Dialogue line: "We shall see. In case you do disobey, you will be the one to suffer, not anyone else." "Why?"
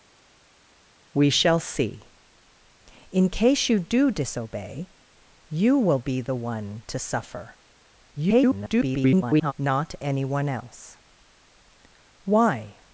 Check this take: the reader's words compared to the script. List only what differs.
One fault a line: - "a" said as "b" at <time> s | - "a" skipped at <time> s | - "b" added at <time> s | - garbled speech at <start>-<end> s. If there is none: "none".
- garbled speech at 8.2-9.5 s